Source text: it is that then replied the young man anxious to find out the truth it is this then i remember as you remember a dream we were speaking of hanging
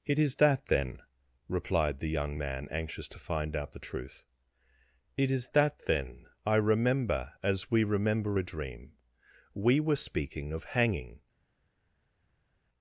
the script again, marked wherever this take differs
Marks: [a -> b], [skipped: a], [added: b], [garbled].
it is that then replied the young man anxious to find out the truth it is [this -> that] then i remember as [you -> we] remember a dream we were speaking of hanging